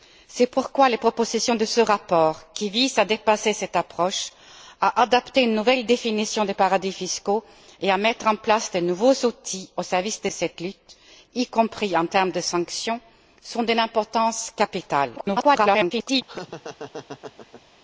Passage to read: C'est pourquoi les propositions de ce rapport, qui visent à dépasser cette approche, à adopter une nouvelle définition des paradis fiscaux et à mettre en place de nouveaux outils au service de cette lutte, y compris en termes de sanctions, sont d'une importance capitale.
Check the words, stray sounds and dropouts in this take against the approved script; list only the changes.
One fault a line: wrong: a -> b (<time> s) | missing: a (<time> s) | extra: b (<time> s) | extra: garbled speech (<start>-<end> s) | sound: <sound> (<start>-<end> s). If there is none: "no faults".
extra: garbled speech (15.2-16.2 s)
sound: laugh (16.3-17.6 s)